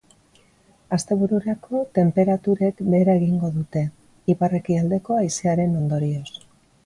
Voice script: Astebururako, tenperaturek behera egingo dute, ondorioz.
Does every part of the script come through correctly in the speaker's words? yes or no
no